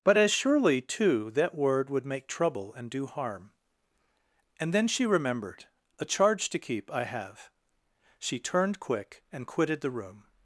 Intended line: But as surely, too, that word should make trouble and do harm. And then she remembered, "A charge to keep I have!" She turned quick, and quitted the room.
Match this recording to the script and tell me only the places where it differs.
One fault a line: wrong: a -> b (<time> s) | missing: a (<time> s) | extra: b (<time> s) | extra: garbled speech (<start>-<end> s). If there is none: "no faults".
wrong: should -> would (1.9 s)